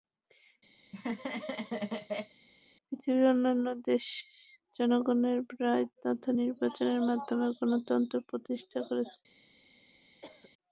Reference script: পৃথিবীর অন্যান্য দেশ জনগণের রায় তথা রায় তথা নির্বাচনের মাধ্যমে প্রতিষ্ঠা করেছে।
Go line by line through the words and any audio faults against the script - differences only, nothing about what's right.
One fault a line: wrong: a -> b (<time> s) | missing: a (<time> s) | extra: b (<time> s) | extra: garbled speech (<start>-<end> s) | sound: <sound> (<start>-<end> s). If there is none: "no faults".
sound: laugh (0.8-2.3 s)
missing: রায় তথা (6.3 s)
extra: গণতন্ত্র (7.6 s)
sound: cough (10.2-10.5 s)